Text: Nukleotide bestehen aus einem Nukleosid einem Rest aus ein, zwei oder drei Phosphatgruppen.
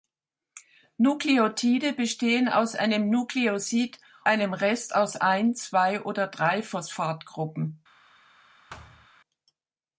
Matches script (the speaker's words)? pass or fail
pass